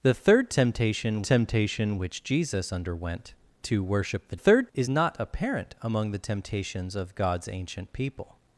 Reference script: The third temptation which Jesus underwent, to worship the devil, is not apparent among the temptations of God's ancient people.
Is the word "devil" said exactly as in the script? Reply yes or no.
no